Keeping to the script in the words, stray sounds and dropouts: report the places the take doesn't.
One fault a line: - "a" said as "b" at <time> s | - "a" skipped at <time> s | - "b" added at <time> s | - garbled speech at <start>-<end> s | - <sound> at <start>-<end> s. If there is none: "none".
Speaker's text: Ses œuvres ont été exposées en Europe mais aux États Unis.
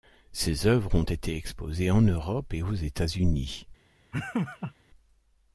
- "mais" said as "et" at 2.5 s
- laugh at 4.1-4.7 s